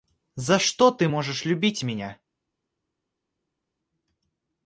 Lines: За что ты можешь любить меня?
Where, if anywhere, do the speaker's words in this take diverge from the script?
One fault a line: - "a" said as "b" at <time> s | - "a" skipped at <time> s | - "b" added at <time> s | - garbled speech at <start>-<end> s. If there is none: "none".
none